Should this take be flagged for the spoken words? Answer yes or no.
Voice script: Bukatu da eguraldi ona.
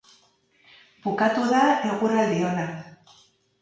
no